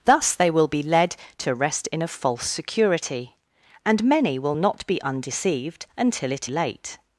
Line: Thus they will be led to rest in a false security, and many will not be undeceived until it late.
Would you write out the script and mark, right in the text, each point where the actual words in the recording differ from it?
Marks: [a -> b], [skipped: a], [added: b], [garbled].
Thus they will be led to rest in a false security, and many will not be undeceived until it late.